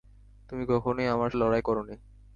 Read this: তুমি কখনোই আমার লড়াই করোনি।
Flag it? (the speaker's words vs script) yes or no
no